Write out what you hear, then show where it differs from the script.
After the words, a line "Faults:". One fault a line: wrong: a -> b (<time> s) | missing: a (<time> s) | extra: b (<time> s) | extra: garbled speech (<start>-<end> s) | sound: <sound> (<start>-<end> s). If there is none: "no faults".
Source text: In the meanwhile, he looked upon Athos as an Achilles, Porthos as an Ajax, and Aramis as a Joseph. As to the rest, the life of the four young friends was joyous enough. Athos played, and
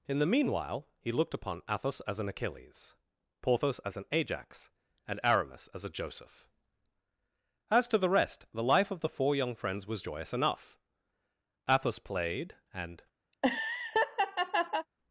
In the meanwhile, he looked upon Athos as an Achilles, Porthos as an Ajax, and Aramis as a Joseph. As to the rest, the life of the four young friends was joyous enough. Athos played, and
Faults:
sound: laugh (13.3-14.9 s)